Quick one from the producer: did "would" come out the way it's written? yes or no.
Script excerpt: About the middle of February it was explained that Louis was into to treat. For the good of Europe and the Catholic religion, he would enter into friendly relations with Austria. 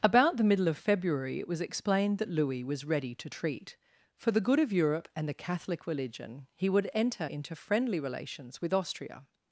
yes